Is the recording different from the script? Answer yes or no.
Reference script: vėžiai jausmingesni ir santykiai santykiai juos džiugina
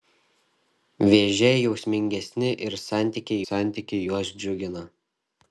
no